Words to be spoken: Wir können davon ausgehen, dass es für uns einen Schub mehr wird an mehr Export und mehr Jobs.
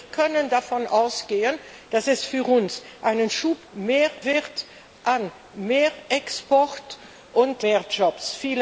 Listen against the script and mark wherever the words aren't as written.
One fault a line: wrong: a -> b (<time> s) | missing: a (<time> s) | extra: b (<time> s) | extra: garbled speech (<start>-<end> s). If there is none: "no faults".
no faults